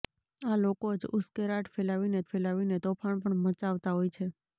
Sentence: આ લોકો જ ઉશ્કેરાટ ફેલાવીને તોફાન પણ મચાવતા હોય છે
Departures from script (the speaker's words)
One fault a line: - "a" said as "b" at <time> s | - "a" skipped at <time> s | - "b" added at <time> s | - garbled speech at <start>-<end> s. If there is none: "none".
- "ફેલાવીને" added at 2.3 s